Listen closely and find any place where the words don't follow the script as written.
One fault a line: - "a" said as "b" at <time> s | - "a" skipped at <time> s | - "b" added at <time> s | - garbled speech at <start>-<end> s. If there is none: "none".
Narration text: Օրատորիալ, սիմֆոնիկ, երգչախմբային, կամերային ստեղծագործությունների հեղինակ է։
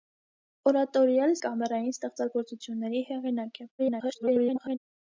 - "սիմֆոնիկ երգչախմբային" skipped at 1.3 s
- garbled speech at 3.8-4.8 s